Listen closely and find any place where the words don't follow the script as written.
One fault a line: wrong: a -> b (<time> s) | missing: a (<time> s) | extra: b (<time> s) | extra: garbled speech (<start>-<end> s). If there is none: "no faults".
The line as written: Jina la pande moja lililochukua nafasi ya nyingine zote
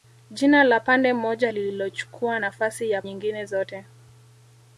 no faults